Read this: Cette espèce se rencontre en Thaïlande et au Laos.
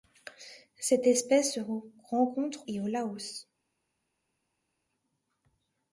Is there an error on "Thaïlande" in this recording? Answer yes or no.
yes